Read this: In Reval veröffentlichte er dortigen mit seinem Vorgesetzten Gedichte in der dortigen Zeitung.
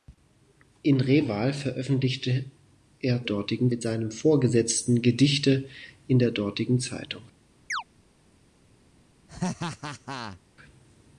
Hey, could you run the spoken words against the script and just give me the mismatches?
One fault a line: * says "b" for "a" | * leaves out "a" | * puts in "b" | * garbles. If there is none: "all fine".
all fine